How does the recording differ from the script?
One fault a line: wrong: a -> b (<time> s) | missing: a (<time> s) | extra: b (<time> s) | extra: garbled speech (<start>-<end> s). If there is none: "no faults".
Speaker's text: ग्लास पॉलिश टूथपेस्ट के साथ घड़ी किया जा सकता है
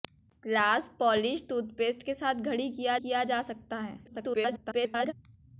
extra: किया (3.0 s)
extra: garbled speech (4.1-5.1 s)